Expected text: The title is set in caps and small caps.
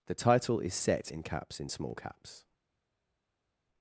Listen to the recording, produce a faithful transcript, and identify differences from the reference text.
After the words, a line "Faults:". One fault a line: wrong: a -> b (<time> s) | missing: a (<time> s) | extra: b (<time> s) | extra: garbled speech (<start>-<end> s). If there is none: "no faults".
The title is set in caps in small caps.
Faults:
wrong: and -> in (1.6 s)